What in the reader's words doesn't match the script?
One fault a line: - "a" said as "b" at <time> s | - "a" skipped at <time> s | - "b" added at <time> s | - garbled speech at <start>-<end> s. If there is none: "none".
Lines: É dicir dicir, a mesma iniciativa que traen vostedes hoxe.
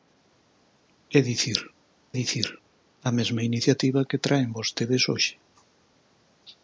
none